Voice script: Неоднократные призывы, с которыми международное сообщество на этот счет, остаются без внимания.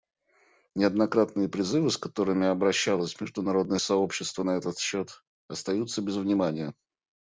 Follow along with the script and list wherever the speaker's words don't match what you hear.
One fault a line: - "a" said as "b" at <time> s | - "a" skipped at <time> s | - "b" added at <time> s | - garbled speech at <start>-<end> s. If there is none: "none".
- "обращалось" added at 2.5 s